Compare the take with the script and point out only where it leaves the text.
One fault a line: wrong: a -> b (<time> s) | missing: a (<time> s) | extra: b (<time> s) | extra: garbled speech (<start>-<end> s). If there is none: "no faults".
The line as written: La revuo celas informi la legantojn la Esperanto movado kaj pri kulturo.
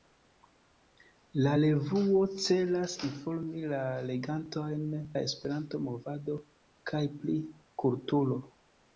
no faults